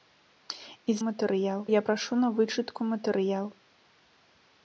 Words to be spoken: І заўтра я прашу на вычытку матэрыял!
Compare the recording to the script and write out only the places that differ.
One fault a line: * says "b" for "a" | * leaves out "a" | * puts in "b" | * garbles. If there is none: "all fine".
* says "матэрыял" for "заўтра"